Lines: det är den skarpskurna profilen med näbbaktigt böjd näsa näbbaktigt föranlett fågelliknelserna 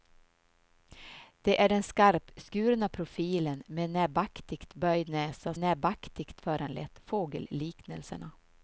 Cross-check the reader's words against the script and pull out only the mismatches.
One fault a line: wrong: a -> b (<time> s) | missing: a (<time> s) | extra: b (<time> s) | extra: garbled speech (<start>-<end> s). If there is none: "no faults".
no faults